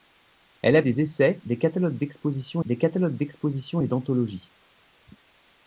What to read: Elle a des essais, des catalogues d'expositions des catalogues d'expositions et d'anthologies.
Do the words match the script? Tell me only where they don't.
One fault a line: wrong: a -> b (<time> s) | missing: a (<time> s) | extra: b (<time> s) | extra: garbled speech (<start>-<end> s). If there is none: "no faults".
no faults